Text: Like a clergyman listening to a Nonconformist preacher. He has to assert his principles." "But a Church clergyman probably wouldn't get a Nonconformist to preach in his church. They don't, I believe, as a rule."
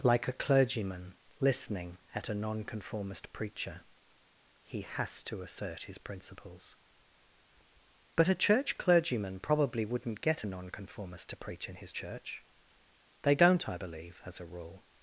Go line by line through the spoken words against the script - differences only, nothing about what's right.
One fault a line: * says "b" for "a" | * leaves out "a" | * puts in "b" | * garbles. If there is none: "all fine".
* says "at" for "to"